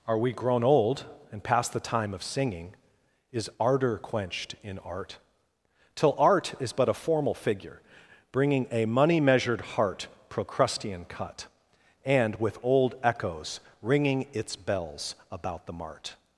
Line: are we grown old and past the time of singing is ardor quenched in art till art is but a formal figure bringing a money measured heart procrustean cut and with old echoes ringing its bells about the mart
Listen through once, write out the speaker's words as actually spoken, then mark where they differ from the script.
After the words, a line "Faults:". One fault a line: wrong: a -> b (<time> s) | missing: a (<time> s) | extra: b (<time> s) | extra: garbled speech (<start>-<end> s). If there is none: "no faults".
are we grown old and past the time of singing is ardor quenched in art till art is but a formal figure bringing a money measured heart procrustean cut and with old echoes ringing its bells about the mart
Faults:
no faults